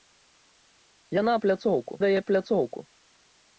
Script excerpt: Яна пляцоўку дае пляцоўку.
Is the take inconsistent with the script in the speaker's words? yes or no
no